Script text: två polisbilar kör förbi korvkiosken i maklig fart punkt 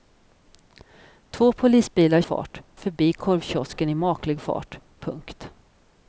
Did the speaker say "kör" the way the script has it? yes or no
no